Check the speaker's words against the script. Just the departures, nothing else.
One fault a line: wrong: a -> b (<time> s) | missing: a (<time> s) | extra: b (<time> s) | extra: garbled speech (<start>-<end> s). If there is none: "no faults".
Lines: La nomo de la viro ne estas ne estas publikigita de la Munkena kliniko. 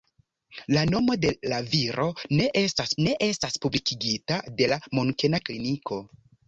no faults